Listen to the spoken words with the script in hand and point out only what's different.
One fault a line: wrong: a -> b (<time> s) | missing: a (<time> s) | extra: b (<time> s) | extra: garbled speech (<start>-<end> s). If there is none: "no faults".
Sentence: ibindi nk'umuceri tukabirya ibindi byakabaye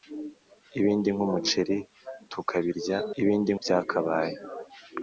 no faults